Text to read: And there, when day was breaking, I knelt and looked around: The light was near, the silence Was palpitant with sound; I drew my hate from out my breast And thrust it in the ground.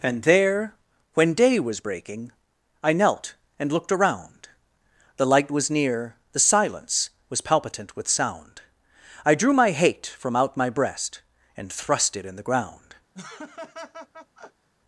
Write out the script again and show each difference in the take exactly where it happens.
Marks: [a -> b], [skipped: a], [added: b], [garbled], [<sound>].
And there, when day was breaking, I knelt and looked around: The light was near, the silence Was palpitant with sound; I drew my hate from out my breast And thrust it in the ground. [laugh]